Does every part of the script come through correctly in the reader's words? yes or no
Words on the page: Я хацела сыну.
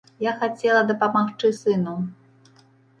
no